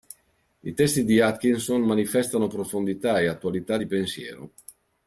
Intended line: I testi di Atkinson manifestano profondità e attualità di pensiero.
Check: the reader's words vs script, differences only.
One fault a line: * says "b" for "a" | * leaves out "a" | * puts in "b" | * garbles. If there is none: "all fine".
all fine